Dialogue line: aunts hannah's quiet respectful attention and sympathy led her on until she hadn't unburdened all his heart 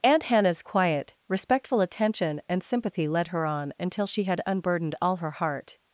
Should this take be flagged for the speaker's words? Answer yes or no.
yes